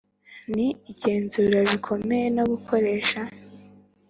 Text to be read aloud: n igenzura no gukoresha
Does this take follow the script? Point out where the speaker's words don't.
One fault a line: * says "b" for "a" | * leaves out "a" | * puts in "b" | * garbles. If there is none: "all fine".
* puts in "bikomeye"